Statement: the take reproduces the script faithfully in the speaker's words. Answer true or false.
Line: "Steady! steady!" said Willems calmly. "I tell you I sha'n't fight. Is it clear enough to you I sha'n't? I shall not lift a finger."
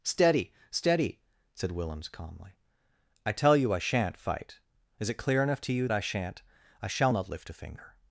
true